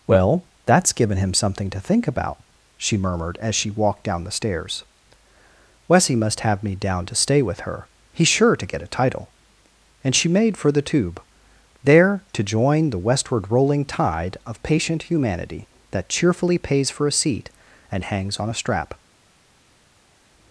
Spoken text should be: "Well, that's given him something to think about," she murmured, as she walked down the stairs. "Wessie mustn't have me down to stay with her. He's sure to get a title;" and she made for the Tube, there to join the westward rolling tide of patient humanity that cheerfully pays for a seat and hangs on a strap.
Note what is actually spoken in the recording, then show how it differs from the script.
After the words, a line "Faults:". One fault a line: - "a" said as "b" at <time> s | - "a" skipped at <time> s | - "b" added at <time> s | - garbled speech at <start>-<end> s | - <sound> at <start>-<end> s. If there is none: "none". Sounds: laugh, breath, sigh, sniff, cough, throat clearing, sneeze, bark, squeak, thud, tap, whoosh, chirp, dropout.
"Well, that's given him something to think about," she murmured, as she walked down the stairs. "Wessie must have me down to stay with her. He's sure to get a title;" and she made for the Tube, there to join the westward rolling tide of patient humanity that cheerfully pays for a seat and hangs on a strap.
Faults:
- "mustn't" said as "must" at 6.2 s